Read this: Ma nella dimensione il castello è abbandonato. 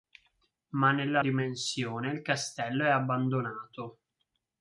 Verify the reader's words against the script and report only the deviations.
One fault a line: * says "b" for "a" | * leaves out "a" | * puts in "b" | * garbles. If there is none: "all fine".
all fine